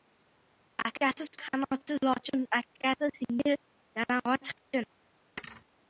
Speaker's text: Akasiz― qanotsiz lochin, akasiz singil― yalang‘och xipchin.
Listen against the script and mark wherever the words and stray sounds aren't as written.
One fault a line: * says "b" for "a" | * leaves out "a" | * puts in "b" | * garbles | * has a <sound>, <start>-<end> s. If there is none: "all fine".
* has a thud, 5.4-5.7 s